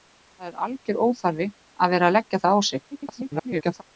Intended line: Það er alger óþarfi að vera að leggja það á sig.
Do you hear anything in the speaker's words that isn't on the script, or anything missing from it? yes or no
yes